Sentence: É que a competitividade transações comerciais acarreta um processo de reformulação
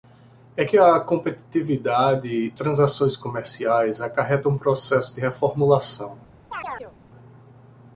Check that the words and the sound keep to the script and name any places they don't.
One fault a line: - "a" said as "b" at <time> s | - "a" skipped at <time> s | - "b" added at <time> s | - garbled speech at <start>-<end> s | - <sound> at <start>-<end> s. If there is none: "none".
- chirp at 6.5-7.0 s